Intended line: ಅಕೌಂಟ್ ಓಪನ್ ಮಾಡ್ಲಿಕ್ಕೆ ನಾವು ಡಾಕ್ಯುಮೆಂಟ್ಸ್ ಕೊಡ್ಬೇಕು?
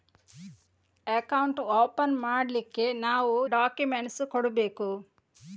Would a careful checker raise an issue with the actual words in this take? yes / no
no